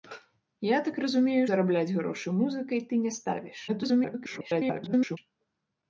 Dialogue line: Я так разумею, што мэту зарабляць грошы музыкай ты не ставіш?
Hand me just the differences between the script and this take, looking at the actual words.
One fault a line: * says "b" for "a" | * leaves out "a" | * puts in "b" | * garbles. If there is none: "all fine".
* leaves out "што мэту"
* garbles